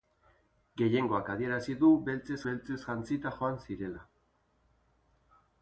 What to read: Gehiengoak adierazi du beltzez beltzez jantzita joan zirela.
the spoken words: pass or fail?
pass